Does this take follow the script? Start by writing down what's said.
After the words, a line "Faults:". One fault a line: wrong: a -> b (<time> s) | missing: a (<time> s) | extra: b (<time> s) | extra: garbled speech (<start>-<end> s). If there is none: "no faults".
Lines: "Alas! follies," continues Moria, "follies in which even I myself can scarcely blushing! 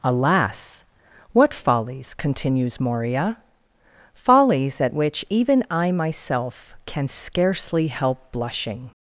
"Alas! what follies," continues Moria, "follies at which even I myself can scarcely help blushing!
Faults:
extra: what (1.3 s)
wrong: in -> at (4.8 s)
extra: help (7.9 s)